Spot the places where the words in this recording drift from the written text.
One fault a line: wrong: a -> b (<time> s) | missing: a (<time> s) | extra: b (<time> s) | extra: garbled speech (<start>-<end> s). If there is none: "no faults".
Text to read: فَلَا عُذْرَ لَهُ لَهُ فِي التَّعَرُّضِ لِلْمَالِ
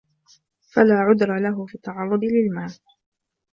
missing: لَهُ (1.6 s)